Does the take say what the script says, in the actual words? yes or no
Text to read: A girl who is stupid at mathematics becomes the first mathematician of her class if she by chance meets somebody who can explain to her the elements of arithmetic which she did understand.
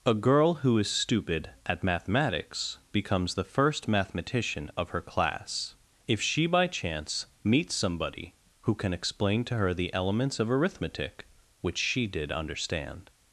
yes